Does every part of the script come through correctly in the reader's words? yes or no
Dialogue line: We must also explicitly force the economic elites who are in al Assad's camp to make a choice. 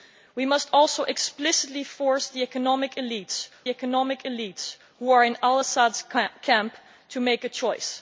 no